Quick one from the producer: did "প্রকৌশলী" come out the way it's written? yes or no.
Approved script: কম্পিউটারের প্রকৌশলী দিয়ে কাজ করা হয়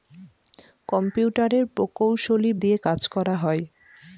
yes